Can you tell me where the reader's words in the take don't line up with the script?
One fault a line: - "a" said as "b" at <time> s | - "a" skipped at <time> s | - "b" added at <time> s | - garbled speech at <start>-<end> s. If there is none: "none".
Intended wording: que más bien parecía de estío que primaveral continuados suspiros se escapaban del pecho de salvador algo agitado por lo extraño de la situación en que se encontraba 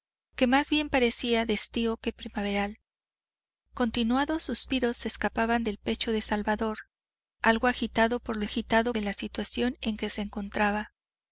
- "extraño" said as "agitado" at 8.4 s